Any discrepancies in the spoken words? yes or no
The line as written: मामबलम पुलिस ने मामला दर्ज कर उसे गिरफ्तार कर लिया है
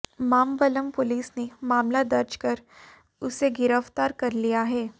no